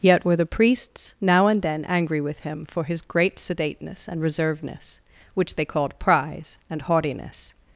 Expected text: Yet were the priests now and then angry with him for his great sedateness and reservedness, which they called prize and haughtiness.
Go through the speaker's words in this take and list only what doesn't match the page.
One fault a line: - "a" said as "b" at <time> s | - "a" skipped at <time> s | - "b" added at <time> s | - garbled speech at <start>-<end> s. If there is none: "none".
none